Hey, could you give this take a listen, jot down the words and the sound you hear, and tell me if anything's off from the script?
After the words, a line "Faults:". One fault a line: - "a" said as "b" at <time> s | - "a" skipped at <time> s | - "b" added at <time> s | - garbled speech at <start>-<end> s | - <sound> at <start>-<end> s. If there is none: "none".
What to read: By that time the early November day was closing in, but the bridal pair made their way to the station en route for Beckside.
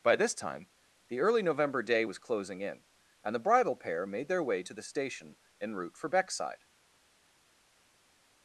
By this time the early November day was closing in, and the bridal pair made their way to the station en route for Beckside.
Faults:
- "that" said as "this" at 0.1 s
- "but" said as "and" at 3.2 s